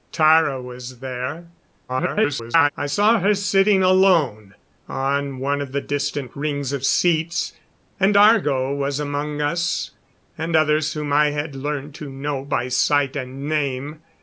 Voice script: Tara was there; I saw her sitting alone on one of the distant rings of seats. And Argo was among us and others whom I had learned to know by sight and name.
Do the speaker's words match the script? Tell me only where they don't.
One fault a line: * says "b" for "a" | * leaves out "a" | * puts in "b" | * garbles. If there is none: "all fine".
* garbles